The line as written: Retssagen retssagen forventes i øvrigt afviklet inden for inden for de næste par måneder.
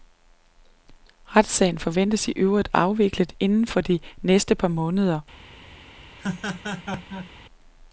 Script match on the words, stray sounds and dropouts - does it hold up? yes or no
no